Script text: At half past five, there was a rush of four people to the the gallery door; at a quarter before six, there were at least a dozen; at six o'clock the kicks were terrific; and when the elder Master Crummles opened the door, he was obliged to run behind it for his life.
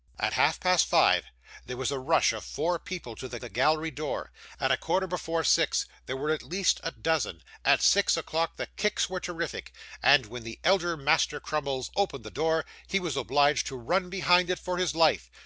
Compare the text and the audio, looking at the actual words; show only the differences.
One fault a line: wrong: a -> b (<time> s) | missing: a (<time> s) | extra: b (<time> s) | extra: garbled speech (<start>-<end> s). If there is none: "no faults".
no faults